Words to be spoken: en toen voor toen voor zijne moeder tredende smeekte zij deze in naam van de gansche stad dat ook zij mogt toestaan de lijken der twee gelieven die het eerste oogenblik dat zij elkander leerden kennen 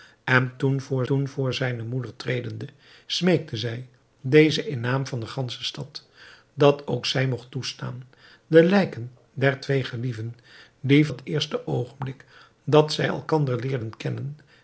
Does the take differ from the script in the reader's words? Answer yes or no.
no